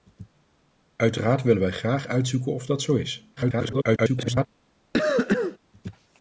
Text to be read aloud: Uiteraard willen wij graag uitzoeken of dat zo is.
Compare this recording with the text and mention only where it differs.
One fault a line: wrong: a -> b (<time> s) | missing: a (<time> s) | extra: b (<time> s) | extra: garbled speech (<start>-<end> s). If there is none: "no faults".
extra: garbled speech (3.4-4.5 s)